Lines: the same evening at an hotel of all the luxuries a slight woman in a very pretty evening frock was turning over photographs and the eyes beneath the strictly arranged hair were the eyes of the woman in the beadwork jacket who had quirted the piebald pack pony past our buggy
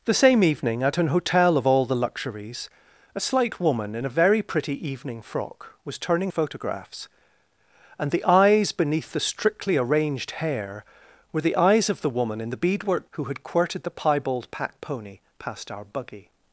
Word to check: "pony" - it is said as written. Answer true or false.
true